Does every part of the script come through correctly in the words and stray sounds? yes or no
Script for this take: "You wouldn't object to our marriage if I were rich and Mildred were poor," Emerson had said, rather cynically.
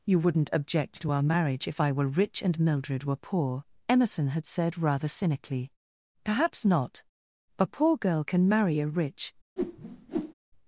no